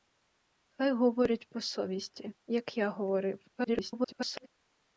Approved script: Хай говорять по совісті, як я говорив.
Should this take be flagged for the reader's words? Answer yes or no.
yes